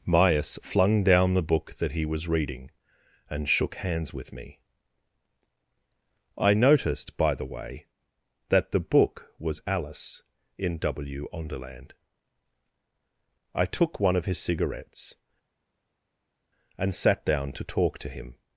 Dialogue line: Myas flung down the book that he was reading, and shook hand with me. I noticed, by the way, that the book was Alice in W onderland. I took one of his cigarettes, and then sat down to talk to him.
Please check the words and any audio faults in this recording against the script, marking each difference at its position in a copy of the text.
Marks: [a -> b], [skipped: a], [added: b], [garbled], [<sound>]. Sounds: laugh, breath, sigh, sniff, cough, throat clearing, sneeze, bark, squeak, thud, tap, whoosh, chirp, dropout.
Myas flung down the book that he was reading, and shook [hand -> hands] with me. I noticed, by the way, that the book was Alice in W onderland. I took one of his cigarettes, and [skipped: then] sat down to talk to him.